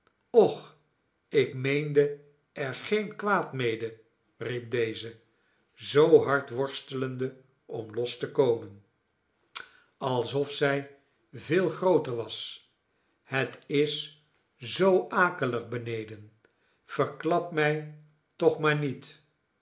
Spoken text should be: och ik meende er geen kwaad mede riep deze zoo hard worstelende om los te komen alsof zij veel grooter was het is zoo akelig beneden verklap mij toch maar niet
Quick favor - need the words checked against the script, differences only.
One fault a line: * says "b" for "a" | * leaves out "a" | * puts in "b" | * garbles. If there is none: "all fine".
all fine